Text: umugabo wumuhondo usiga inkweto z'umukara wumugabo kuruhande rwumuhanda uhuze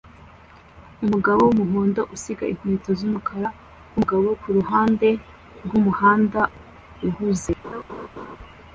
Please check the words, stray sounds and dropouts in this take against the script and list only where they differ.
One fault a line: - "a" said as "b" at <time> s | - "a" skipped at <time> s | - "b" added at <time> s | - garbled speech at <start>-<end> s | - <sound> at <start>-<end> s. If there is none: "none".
- laugh at 7.6-8.4 s